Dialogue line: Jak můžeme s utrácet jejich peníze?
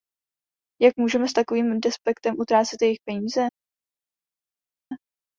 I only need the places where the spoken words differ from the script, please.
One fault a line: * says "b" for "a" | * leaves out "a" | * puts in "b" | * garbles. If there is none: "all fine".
* puts in "takovým despektem"